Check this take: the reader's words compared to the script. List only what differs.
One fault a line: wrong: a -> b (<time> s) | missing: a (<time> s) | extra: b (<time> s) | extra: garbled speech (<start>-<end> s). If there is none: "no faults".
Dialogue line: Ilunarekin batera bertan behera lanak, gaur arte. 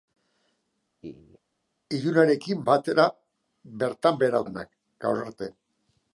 no faults